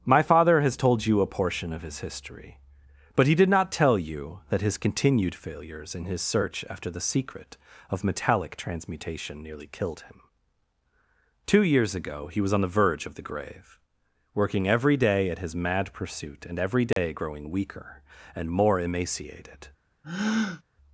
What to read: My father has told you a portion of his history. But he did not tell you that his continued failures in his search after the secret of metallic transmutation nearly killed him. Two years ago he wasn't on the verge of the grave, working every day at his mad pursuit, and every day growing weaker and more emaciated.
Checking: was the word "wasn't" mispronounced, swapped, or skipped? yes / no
yes